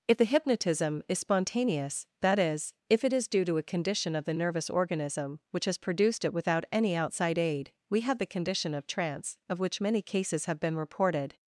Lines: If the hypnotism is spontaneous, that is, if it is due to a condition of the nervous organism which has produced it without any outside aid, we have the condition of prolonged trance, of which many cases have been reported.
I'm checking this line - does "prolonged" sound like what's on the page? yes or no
no